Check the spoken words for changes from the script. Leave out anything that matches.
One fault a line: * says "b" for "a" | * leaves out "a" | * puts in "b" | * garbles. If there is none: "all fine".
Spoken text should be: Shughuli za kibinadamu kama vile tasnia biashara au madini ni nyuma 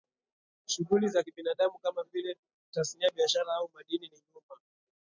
all fine